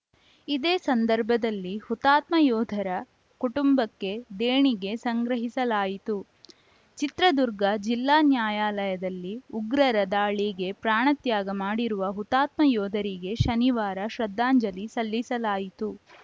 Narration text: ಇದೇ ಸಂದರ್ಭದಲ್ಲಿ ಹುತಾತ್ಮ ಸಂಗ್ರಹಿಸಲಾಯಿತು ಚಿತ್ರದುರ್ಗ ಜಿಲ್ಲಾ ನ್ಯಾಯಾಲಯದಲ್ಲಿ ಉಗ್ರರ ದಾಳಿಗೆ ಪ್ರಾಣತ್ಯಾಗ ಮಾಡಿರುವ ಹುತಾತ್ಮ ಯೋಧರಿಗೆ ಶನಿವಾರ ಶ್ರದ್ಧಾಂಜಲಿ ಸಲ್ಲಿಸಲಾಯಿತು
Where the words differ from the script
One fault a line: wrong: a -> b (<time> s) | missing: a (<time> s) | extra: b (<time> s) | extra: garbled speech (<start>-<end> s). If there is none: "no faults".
extra: ಯೋಧರ ಕುಟುಂಬಕ್ಕೆ ದೇಣಿಗೆ (2.4 s)